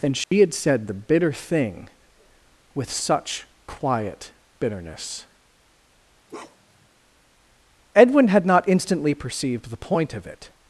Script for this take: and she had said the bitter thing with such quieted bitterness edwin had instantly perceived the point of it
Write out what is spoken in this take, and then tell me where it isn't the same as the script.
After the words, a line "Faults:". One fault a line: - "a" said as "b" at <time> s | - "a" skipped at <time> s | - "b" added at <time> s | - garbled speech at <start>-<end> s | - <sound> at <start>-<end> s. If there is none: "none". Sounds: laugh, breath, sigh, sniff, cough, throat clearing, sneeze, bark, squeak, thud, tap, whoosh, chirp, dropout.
and she had said the bitter thing with such quiet bitterness edwin had not instantly perceived the point of it
Faults:
- dropout at 0.2-0.3 s
- "quieted" said as "quiet" at 3.7 s
- bark at 6.3-6.9 s
- "not" added at 8.5 s